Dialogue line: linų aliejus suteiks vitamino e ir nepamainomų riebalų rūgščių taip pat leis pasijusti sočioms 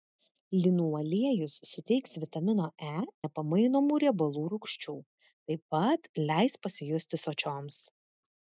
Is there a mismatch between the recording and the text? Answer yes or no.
yes